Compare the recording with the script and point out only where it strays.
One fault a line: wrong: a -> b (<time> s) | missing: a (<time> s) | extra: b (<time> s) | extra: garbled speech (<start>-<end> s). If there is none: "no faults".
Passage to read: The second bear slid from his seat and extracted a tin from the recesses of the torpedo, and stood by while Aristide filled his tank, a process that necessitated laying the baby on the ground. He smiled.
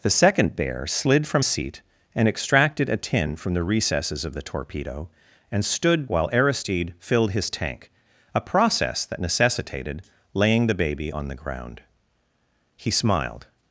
missing: his (1.4 s)
missing: by (6.1 s)